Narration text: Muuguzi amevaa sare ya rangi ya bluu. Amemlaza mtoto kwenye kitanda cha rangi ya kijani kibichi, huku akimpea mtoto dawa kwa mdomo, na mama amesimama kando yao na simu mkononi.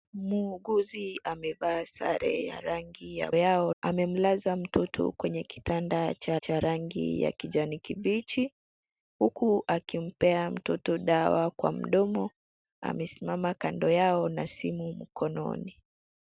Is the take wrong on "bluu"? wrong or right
wrong